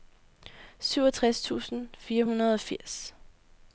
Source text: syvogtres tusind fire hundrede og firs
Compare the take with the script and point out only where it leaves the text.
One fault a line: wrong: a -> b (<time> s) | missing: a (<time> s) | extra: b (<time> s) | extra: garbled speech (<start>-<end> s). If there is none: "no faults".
no faults